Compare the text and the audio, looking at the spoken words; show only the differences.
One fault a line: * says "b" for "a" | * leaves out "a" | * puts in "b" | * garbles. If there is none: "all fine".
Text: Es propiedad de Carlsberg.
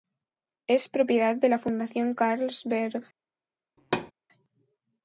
* puts in "la Fundación"